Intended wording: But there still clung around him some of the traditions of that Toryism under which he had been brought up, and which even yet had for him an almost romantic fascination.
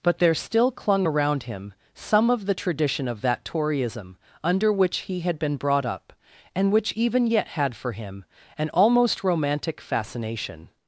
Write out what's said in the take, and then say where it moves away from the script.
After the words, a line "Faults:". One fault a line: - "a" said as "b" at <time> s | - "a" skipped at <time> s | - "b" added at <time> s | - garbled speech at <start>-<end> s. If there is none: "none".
But there still clung around him some of the tradition of that Toryism under which he had been brought up, and which even yet had for him an almost romantic fascination.
Faults:
- "traditions" said as "tradition" at 2.5 s